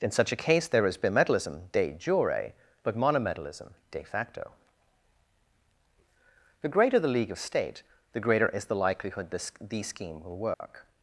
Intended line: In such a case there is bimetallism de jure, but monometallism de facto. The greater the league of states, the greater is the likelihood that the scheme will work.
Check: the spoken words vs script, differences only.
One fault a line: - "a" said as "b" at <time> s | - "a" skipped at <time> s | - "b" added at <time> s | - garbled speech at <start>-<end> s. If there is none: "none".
- "states" said as "state" at 7.4 s
- "that" said as "this" at 9.3 s